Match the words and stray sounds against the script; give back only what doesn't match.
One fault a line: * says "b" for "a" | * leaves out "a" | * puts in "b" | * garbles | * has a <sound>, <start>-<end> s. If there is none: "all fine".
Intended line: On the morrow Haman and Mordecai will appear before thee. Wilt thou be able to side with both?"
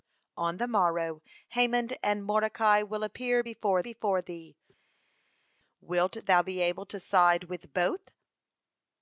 * puts in "before"